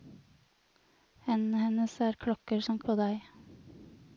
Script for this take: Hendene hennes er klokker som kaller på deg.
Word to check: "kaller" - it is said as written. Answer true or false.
false